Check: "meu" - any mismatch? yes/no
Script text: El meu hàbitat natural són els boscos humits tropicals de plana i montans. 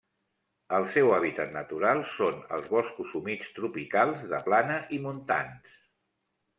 yes